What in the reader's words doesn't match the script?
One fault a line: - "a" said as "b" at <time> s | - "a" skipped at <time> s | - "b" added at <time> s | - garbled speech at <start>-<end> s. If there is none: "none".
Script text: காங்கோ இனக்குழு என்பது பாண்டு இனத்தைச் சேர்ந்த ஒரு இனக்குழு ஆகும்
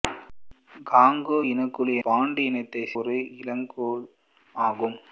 - "என்பது" skipped at 2.0 s
- "சேர்ந்த" skipped at 2.9 s